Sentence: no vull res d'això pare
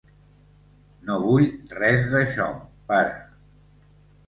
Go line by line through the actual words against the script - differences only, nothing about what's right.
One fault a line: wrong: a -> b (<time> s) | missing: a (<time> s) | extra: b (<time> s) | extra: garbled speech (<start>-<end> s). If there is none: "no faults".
no faults